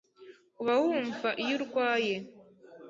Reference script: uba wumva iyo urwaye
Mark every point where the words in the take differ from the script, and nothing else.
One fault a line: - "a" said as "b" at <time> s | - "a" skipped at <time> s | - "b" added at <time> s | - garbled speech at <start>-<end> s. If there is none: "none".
none